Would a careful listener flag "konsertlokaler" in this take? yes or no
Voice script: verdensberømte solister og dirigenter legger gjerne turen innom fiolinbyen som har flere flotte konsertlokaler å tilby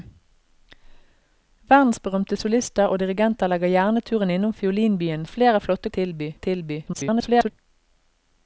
yes